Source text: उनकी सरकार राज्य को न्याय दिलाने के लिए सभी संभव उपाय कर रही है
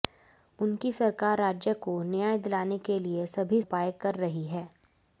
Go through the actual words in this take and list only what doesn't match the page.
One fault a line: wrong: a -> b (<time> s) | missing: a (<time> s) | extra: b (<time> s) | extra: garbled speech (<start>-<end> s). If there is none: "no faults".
missing: संभव (3.6 s)